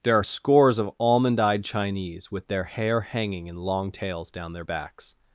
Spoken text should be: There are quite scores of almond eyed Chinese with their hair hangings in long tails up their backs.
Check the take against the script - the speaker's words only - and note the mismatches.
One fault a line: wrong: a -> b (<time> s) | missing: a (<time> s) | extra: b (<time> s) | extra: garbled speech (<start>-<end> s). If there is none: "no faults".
missing: quite (0.2 s)
wrong: hangings -> hanging (3.0 s)
wrong: up -> down (4.3 s)